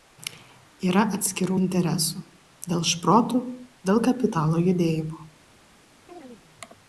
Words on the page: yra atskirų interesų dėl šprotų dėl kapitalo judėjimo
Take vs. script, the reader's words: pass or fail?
pass